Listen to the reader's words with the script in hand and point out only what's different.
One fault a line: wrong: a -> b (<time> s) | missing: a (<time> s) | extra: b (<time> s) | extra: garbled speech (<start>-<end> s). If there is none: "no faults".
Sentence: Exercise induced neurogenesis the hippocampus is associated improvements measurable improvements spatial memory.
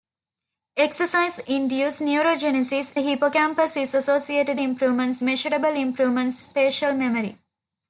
no faults